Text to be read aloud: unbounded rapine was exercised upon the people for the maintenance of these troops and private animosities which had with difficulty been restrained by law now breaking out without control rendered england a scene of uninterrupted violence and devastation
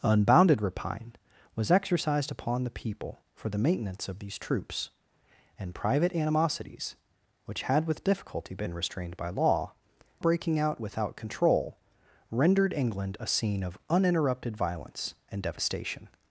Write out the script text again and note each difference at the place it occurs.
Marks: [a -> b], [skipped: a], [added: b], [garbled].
unbounded rapine was exercised upon the people for the maintenance of these troops and private animosities which had with difficulty been restrained by law [skipped: now] breaking out without control rendered england a scene of uninterrupted violence and devastation